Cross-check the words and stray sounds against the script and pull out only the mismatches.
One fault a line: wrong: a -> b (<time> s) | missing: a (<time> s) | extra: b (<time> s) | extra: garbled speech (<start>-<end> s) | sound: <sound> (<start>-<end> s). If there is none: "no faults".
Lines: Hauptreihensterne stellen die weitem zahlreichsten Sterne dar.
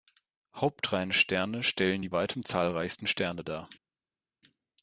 no faults